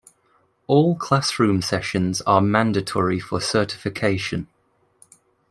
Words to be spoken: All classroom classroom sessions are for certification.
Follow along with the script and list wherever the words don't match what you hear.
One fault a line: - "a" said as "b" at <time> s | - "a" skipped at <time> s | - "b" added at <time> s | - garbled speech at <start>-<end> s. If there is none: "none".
- "classroom" skipped at 1.6 s
- "mandatory" added at 2.4 s